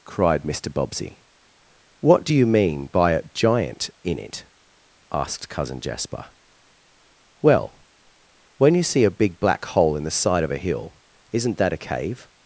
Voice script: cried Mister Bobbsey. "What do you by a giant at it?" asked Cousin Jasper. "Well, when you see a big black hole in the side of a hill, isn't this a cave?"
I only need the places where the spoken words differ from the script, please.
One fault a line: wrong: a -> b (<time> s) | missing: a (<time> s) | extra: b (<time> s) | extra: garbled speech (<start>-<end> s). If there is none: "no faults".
extra: mean (2.5 s)
wrong: at -> in (4.0 s)
wrong: this -> that (11.6 s)